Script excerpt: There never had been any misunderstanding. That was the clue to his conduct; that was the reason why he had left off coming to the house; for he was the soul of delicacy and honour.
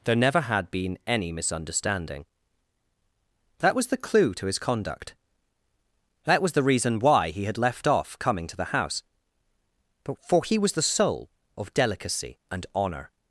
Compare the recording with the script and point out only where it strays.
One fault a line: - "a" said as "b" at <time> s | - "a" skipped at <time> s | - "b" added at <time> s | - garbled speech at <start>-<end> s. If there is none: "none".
- "but" added at 10.0 s